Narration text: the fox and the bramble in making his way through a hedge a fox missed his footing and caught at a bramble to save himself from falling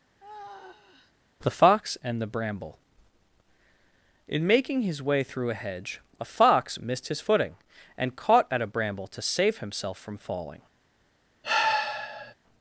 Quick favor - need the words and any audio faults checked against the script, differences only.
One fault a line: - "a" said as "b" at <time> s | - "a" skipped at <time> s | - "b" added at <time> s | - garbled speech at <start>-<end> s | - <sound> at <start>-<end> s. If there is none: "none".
- sigh at 0.2-1.1 s
- sigh at 11.4-12.3 s